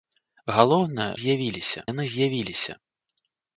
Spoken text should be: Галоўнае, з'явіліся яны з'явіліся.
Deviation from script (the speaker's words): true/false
false